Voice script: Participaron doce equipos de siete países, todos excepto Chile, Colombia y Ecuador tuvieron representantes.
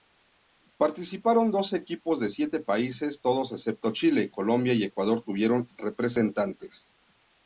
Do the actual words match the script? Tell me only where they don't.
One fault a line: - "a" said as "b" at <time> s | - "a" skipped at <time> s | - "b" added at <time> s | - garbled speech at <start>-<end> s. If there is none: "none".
none